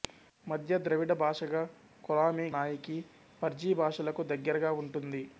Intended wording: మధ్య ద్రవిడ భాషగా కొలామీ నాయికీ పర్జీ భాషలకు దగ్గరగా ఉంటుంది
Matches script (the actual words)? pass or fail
pass